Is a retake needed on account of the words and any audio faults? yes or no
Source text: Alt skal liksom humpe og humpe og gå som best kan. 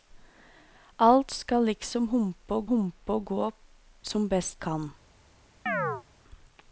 yes